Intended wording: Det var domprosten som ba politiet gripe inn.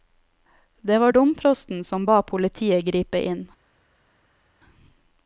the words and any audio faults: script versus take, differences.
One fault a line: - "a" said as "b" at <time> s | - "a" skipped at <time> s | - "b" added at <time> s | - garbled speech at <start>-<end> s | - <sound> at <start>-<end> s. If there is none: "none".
none